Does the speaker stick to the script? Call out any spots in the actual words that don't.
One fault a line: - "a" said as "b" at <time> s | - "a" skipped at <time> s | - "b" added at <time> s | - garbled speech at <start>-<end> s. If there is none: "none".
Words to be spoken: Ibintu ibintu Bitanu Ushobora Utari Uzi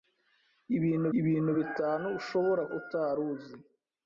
none